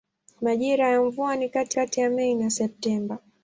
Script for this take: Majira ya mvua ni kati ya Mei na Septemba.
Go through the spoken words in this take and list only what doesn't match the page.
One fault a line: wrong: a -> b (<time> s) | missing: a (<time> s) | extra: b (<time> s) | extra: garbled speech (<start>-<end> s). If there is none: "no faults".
extra: kati (1.7 s)